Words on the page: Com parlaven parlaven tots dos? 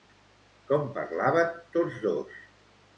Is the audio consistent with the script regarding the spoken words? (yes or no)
no